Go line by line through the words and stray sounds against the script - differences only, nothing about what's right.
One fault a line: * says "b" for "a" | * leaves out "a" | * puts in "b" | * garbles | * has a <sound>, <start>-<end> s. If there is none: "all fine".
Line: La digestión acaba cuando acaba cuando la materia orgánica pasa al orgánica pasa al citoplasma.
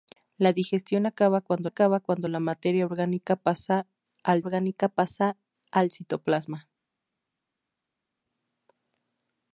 all fine